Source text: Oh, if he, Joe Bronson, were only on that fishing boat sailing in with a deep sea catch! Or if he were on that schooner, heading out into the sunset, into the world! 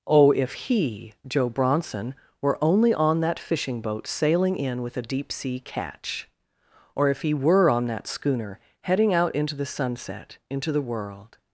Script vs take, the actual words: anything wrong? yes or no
no